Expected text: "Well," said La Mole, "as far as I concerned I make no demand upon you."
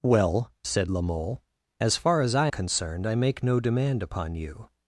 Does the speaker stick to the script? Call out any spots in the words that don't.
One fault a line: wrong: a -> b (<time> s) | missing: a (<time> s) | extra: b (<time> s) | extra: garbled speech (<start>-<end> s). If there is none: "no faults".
no faults